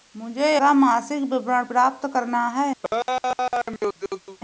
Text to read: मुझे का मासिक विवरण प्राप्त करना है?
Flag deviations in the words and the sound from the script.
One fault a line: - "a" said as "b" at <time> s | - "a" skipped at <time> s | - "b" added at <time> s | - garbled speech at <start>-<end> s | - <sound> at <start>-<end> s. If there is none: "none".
- laugh at 2.8-4.4 s